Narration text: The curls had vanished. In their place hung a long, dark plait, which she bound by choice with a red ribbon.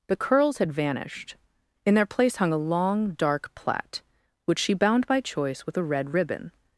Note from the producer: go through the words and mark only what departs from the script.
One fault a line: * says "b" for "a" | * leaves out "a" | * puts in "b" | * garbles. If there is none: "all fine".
all fine